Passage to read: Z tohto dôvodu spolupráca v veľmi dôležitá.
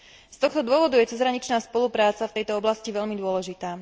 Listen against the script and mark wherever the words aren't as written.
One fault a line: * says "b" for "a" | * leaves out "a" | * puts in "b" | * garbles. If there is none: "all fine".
* puts in "je cezhraničná"
* puts in "tejto oblasti"